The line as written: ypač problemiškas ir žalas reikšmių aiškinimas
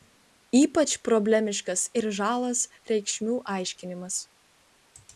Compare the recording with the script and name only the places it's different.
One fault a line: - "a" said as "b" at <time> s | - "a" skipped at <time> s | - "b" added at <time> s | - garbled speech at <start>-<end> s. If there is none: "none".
none